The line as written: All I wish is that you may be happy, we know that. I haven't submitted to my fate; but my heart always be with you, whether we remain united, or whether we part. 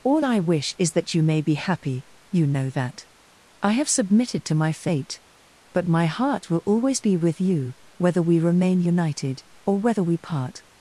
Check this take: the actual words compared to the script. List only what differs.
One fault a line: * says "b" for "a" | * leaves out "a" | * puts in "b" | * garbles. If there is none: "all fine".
* says "you" for "we"
* says "have" for "haven't"
* puts in "will"